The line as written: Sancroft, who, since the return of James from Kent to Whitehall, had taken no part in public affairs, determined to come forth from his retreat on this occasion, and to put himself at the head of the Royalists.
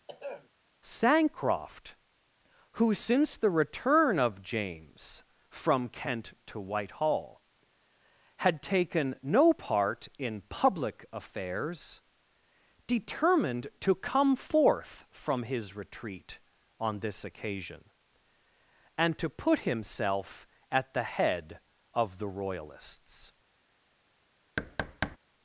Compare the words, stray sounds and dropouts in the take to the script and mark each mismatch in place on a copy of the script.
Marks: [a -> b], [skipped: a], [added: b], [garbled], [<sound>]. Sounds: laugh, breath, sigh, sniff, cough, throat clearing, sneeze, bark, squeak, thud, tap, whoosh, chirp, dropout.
[throat clearing] Sancroft, who, since the return of James from Kent to Whitehall, had taken no part in public affairs, determined to come forth from his retreat on this occasion, and to put himself at the head of the Royalists. [thud]